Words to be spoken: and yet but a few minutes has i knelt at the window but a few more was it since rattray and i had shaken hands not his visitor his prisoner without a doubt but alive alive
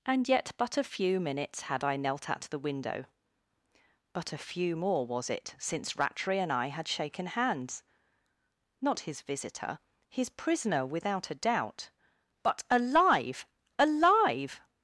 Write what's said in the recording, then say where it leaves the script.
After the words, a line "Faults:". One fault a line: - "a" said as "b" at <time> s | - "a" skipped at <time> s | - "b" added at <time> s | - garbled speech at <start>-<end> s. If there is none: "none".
and yet but a few minutes had i knelt at the window but a few more was it since rattray and i had shaken hands not his visitor his prisoner without a doubt but alive alive
Faults:
- "has" said as "had" at 1.6 s